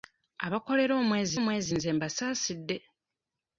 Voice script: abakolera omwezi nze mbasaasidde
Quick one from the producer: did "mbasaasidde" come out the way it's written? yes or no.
yes